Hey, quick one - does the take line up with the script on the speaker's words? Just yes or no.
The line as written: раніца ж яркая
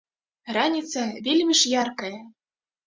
no